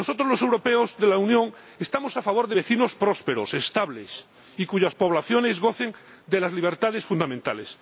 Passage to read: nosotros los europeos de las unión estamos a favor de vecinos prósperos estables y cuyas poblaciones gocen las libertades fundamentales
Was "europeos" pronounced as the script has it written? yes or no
yes